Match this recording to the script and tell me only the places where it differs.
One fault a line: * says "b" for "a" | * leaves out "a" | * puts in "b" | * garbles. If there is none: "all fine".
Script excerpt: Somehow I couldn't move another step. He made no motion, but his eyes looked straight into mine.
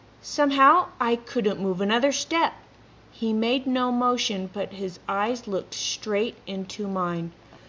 all fine